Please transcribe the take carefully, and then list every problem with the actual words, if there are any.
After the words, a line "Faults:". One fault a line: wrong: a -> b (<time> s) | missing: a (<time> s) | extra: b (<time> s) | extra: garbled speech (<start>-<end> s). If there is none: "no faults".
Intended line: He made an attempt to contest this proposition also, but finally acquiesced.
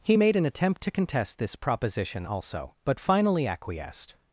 He made an attempt to contest this proposition also, but finally acquiesced.
Faults:
no faults